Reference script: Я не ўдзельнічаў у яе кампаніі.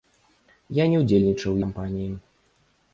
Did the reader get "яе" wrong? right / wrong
wrong